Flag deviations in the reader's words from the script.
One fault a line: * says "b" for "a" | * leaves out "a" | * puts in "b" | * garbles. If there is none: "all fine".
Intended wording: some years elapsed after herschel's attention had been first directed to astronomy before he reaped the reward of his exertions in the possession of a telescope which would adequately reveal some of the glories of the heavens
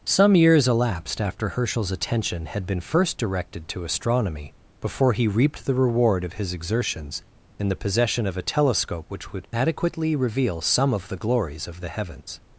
all fine